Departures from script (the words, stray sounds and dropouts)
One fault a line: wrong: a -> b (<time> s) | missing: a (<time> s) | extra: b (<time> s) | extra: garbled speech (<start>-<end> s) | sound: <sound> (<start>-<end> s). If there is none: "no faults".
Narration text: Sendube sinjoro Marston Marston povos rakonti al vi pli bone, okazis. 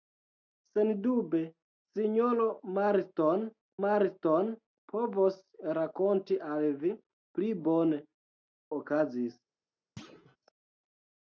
sound: thud (10.0-10.4 s)